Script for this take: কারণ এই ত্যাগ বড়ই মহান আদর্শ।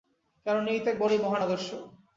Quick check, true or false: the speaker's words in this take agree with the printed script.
true